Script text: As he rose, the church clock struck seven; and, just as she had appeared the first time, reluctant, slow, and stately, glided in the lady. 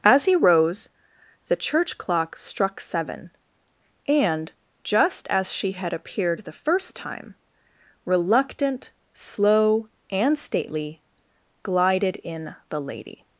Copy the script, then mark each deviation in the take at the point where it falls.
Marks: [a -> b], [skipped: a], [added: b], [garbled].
As he rose, the church clock struck seven; and, just as she had appeared the first time, reluctant, slow, and stately, glided in the lady.